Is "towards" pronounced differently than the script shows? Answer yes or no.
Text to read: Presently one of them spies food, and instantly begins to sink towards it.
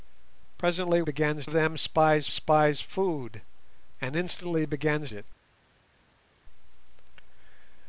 yes